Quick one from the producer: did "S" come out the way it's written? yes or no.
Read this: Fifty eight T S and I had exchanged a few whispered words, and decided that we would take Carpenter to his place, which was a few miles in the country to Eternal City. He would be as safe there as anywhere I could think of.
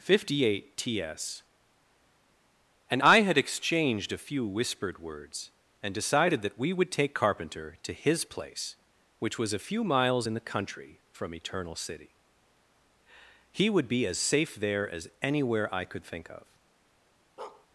yes